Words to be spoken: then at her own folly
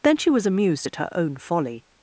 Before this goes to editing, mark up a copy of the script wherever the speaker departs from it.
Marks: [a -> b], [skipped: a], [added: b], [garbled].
then [added: she was amused] at her own folly